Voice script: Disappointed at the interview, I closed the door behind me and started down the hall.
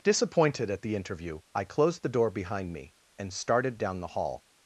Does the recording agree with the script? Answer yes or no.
yes